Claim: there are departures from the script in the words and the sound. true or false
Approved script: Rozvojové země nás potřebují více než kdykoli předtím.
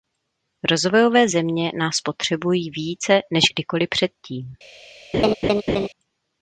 true